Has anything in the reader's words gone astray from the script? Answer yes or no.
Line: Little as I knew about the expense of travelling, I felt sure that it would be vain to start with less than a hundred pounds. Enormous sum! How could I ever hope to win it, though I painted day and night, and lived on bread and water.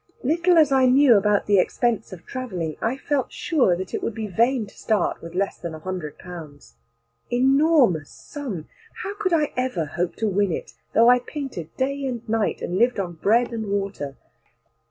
no